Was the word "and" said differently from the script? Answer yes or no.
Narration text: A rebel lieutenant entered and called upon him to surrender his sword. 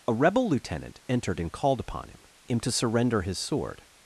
no